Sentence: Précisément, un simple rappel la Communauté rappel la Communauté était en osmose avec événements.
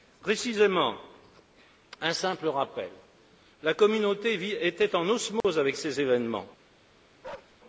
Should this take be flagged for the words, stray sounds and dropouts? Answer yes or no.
yes